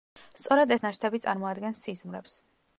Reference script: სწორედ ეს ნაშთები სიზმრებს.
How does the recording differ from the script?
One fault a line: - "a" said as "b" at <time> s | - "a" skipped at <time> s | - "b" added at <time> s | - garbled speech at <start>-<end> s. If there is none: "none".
- "წარმოადგენს" added at 1.3 s